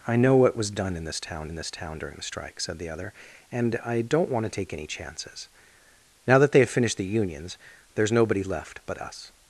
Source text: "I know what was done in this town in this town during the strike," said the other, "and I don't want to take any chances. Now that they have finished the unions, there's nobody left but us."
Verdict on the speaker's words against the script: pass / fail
pass